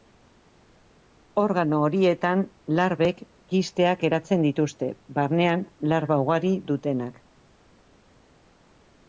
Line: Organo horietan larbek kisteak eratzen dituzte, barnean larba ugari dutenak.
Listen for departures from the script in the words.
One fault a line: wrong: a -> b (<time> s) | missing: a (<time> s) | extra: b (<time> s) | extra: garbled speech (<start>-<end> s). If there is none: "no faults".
no faults